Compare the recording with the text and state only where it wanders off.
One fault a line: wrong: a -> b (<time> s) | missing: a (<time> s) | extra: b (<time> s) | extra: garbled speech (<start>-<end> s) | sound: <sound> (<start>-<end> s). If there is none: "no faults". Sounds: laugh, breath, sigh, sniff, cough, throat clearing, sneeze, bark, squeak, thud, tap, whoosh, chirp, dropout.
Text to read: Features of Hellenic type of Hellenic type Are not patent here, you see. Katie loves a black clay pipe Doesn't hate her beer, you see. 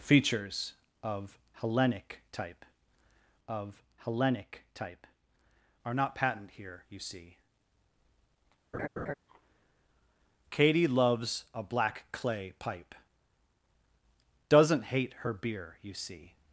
sound: laugh (8.7-9.1 s)